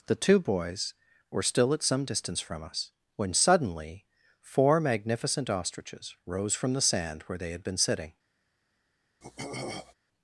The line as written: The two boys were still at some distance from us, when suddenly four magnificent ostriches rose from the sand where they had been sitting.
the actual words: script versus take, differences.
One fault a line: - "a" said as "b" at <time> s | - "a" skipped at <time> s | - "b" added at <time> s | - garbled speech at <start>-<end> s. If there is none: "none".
none